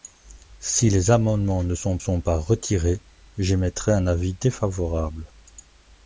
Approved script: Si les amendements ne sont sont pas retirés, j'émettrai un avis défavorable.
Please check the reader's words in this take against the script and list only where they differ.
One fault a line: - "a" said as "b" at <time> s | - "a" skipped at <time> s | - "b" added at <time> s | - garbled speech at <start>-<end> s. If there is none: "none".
none